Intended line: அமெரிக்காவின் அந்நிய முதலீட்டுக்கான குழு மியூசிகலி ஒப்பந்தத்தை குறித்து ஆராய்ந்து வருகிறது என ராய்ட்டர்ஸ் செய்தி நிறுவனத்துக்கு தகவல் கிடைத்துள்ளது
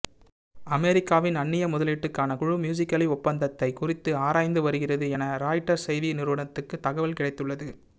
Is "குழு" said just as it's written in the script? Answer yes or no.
yes